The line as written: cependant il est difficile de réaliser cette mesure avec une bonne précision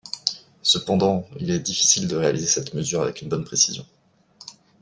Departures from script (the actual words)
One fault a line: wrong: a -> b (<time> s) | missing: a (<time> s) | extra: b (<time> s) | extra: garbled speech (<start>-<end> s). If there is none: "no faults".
no faults